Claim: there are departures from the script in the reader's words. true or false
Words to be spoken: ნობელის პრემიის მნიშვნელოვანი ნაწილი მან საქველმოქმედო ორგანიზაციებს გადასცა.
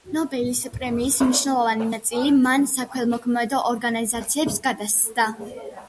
false